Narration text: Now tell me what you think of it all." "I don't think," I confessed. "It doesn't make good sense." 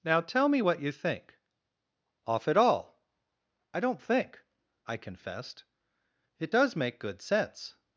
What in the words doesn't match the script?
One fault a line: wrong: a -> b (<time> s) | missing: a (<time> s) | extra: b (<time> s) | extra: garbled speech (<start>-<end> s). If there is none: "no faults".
wrong: of -> off (2.3 s)
wrong: doesn't -> does (6.5 s)